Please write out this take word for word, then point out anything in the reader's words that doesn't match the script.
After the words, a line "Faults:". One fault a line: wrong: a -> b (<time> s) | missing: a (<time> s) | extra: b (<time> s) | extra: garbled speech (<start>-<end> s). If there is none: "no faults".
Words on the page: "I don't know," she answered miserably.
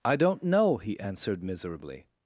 "I don't know," he answered miserably.
Faults:
wrong: she -> he (0.8 s)